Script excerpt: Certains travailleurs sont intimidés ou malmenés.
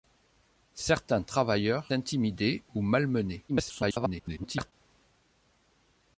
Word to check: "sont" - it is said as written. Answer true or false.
false